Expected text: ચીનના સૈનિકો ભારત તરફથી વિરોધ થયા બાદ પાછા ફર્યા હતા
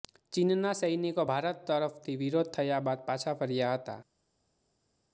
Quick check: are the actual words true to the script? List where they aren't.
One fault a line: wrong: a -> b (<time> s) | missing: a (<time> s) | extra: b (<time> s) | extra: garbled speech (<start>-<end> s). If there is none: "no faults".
no faults